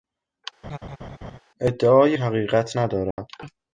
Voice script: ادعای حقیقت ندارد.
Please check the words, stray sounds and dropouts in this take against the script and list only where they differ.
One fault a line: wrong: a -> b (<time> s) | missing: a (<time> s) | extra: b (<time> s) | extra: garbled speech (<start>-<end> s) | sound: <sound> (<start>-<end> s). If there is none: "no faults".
sound: laugh (0.6-1.4 s)
sound: dropout (3.1-3.2 s)